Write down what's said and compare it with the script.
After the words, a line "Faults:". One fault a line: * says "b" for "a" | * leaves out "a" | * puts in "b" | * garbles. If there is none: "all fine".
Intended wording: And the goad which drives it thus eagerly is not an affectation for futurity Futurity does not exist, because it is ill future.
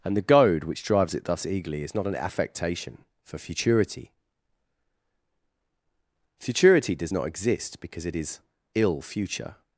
And the goad which drives it thus eagerly is not an affectation for futurity Futurity does not exist, because it is ill future.
Faults:
all fine